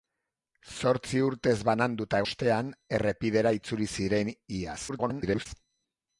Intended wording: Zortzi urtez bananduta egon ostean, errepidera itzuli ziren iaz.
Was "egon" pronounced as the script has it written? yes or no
no